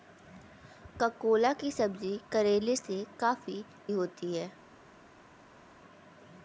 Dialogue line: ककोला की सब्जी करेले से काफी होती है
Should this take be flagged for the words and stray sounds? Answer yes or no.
no